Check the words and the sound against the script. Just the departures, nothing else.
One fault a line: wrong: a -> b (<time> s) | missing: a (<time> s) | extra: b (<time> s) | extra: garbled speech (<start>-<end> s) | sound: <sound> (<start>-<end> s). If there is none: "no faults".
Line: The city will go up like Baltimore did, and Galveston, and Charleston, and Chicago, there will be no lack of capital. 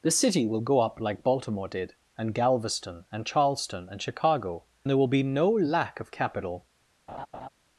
sound: laugh (7.1-7.5 s)